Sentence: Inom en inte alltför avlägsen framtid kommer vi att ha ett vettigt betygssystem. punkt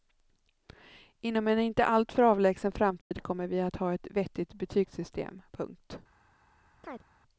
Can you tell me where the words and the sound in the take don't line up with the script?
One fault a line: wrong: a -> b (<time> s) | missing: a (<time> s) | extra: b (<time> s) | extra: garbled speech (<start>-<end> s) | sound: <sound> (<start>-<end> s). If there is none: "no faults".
sound: dropout (3.0-3.1 s)
sound: chirp (6.8-7.0 s)